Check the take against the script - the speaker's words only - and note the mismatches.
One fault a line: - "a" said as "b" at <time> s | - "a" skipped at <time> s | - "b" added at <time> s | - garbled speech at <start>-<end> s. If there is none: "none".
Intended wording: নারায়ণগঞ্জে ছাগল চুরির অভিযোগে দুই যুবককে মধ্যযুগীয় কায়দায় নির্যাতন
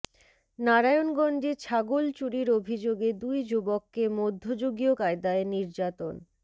none